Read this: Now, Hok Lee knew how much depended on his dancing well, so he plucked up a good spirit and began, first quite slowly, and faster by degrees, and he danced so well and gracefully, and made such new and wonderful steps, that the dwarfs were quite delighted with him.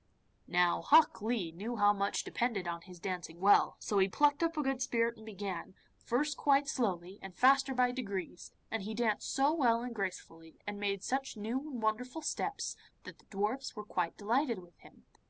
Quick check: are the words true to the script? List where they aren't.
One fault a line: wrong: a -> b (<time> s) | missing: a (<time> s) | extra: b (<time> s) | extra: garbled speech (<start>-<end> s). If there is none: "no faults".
no faults